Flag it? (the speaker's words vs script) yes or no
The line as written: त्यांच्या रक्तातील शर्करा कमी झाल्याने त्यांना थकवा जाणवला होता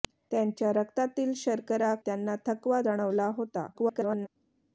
yes